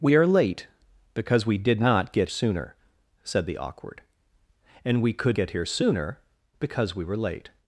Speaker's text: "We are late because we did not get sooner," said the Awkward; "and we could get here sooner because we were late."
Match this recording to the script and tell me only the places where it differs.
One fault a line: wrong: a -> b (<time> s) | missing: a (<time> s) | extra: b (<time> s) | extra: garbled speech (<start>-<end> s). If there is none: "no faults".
no faults